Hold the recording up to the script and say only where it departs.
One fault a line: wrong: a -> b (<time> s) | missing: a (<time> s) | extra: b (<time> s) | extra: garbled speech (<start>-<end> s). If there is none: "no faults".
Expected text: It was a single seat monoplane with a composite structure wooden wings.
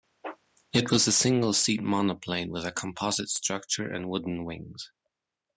extra: and (3.9 s)